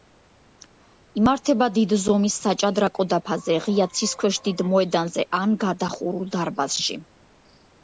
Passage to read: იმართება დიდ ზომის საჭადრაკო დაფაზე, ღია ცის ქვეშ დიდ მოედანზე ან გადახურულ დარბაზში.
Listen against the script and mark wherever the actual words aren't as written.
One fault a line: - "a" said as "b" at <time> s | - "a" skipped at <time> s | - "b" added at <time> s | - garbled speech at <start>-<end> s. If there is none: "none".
none